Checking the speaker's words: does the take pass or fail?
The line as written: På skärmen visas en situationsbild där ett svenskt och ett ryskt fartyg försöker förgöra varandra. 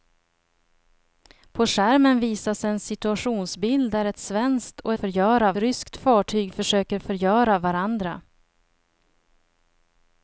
fail